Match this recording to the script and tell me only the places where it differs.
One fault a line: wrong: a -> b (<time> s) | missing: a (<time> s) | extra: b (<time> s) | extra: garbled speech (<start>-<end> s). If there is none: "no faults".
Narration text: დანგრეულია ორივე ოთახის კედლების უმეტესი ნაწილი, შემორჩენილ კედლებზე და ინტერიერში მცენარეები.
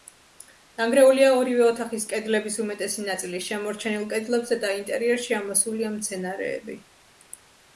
extra: ამოსულია (5.4 s)